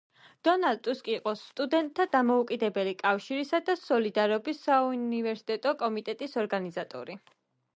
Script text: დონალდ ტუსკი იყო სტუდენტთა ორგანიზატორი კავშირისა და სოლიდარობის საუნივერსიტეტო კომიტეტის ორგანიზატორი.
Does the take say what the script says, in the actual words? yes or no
no